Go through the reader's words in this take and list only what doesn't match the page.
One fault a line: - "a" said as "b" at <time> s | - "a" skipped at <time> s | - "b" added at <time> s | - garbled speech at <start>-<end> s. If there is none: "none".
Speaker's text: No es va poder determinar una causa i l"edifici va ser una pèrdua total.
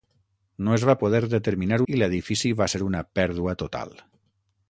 - "una causa" skipped at 1.8 s